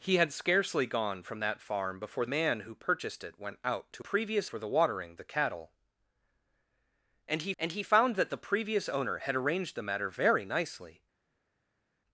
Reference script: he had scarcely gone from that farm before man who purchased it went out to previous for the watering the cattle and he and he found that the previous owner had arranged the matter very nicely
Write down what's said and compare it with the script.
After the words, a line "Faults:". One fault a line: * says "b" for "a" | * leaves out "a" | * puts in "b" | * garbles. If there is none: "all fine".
he had scarcely gone from that farm before man who purchased it went out to previous for the watering the cattle and he and he found that the previous owner had arranged the matter very nicely
Faults:
all fine